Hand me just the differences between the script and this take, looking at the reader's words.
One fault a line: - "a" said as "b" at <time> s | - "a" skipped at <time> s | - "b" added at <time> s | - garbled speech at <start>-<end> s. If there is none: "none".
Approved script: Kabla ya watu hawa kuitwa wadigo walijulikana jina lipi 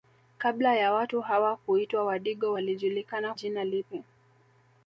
none